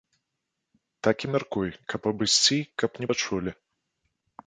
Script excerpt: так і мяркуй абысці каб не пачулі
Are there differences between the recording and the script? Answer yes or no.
yes